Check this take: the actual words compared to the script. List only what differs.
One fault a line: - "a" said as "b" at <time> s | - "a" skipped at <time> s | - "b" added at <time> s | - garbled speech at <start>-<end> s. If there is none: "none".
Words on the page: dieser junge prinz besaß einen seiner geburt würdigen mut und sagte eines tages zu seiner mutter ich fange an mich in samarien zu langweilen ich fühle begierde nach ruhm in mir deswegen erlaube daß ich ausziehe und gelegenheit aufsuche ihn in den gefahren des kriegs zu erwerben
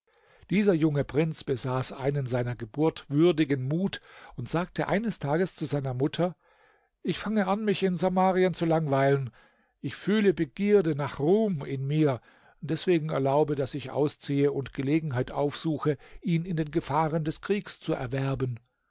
none